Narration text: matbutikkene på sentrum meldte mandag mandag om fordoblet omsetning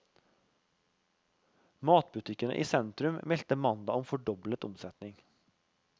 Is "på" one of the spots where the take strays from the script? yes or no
yes